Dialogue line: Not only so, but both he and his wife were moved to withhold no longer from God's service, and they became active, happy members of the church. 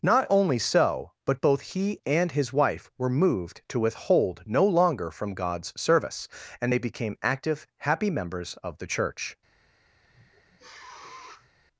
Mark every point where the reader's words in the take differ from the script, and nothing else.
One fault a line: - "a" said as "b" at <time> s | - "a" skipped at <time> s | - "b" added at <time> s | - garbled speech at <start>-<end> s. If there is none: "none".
none